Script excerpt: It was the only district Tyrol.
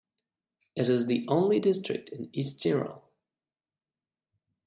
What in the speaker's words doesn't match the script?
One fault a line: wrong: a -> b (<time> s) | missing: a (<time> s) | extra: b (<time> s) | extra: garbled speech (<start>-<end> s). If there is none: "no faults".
wrong: was -> is (0.9 s)
extra: in East (2.1 s)